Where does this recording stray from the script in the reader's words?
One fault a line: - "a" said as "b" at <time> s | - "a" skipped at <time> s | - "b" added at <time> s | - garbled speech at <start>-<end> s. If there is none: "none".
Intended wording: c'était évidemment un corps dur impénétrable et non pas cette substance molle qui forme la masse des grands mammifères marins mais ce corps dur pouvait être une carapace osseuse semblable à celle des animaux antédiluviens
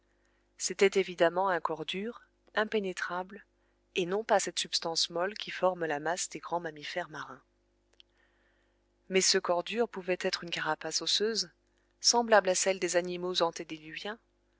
none